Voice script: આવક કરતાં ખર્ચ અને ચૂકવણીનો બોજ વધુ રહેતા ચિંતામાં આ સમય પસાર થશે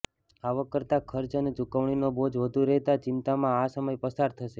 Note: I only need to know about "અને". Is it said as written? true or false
true